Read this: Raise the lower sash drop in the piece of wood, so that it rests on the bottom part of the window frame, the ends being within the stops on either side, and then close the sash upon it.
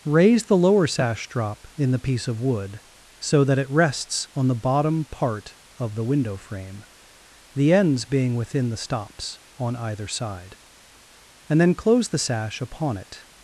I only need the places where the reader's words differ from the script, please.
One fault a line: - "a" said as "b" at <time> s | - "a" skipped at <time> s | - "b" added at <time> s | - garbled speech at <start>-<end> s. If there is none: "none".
none